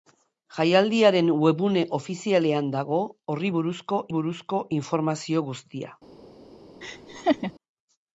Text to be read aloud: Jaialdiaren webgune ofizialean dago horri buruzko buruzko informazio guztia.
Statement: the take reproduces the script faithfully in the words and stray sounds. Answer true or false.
false